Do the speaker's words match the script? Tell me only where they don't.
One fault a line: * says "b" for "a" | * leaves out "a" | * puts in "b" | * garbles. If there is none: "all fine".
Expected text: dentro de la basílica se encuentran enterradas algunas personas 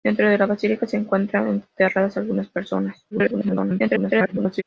* garbles